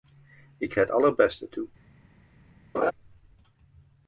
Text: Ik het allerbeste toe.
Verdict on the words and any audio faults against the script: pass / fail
fail